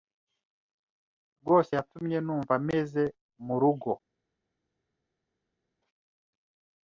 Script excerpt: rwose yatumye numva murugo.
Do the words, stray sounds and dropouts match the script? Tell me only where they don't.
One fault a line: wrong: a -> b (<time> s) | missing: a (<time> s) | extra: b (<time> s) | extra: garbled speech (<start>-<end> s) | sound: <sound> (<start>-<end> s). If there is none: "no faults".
extra: meze (2.7 s)